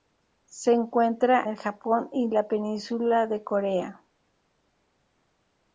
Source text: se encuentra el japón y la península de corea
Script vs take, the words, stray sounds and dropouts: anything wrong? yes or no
no